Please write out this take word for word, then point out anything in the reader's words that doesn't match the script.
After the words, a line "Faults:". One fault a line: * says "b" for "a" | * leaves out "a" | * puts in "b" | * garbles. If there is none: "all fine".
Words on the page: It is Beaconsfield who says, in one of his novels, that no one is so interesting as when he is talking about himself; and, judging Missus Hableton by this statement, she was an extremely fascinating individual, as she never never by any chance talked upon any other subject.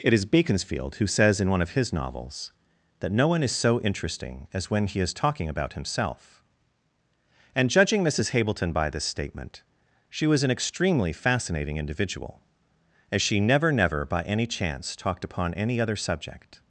It is Beaconsfield who says, in one of his novels, that no one is so interesting as when he is talking about himself; and, judging Missus Hableton by this statement, she was an extremely fascinating individual, as she never never by any chance talked upon any other subject.
Faults:
all fine